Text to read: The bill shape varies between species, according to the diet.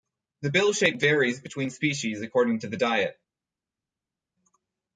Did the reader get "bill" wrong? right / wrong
right